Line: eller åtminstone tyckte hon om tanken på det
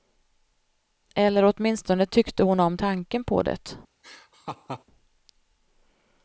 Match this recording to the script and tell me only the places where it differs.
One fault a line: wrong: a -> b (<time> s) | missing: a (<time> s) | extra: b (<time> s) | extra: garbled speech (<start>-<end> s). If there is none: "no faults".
no faults